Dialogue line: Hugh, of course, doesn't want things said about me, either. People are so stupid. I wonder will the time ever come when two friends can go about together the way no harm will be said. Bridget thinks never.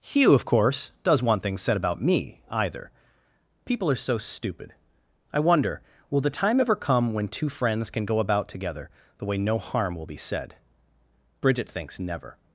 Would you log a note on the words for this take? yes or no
yes